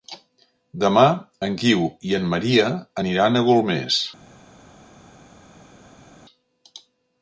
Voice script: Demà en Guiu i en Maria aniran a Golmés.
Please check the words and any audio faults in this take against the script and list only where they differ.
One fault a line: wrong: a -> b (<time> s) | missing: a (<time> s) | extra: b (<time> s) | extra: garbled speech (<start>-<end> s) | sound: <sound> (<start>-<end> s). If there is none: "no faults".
no faults